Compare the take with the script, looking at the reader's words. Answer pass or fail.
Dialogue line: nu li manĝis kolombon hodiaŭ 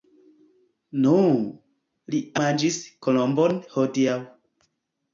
pass